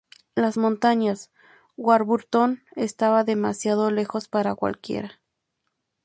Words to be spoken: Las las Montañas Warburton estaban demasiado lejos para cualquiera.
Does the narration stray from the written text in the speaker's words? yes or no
yes